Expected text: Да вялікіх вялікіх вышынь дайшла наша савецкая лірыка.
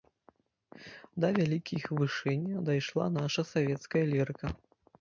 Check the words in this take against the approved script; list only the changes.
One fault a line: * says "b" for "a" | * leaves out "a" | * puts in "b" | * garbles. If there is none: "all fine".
* leaves out "вялікіх"